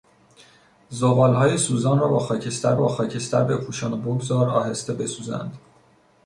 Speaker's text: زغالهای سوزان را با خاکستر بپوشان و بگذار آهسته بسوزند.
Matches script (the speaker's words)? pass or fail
fail